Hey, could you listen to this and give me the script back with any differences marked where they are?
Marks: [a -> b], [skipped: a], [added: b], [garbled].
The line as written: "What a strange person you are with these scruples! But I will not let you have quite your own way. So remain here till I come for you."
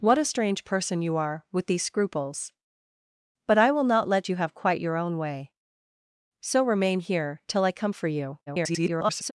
"What a strange person you are with these scruples! But I will not let you have quite your own way. So remain here till I come for you." [garbled]